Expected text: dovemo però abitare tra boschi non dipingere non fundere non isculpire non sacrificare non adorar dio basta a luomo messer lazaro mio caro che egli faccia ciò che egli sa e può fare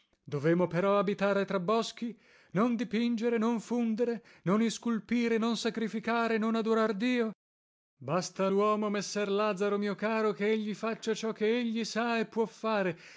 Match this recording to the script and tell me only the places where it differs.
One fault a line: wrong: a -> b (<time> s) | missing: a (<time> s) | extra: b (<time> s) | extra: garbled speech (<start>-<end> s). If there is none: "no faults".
no faults